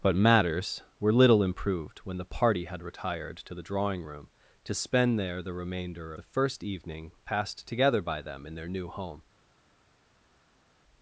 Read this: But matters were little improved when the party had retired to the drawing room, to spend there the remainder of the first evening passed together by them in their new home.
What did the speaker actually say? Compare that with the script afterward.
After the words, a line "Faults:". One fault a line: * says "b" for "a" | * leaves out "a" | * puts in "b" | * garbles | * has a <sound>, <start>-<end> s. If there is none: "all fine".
But matters were little improved when the party had retired to the drawing room, to spend there the remainder the first evening passed together by them in their new home.
Faults:
* leaves out "of"